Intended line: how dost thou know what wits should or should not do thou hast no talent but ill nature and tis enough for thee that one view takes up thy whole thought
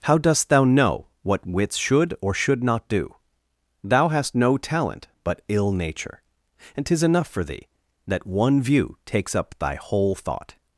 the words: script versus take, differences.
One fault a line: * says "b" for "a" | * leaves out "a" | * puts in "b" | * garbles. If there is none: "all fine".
all fine